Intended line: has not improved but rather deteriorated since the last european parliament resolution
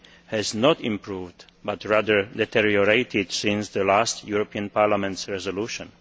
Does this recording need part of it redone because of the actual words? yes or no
no